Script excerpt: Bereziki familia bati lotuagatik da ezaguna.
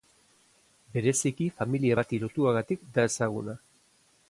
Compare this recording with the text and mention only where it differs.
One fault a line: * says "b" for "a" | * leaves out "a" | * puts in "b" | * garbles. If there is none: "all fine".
all fine